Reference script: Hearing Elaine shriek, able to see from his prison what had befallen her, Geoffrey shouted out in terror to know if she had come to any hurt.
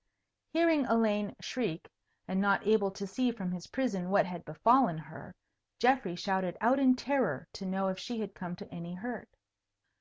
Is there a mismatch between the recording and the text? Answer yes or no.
yes